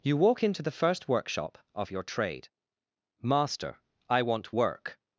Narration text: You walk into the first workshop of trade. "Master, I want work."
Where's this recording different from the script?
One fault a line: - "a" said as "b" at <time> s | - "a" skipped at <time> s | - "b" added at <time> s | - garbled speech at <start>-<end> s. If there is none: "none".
- "your" added at 1.9 s